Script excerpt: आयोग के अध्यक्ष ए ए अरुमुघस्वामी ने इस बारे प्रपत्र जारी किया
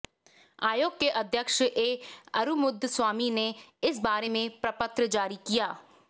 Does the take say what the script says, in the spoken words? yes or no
no